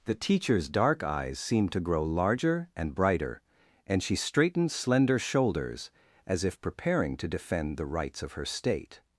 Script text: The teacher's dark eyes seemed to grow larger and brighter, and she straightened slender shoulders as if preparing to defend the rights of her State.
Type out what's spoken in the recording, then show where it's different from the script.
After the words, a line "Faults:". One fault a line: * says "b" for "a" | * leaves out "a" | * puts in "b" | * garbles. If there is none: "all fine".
The teacher's dark eyes seemed to grow larger and brighter, and she straightened slender shoulders as if preparing to defend the rights of her State.
Faults:
all fine